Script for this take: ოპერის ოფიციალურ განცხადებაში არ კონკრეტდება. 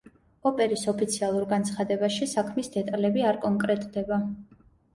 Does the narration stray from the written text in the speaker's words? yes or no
yes